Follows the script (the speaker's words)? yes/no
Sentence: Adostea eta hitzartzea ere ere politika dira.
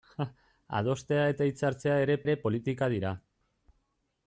yes